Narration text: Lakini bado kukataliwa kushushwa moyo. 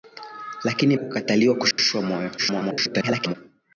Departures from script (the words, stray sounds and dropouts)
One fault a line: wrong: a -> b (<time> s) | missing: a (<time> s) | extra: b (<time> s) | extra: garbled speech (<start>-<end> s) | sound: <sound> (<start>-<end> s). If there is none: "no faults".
missing: bado (1.0 s)
sound: dropout (1.7-1.8 s)
extra: garbled speech (2.4-3.4 s)